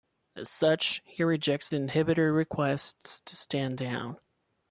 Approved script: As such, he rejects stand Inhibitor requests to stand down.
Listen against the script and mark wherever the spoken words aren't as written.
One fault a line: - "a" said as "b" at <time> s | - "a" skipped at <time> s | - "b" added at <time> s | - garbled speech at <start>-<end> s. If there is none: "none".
- "stand" said as "the" at 1.7 s